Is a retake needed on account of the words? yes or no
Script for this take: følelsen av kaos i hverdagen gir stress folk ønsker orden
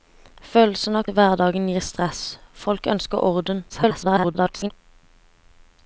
yes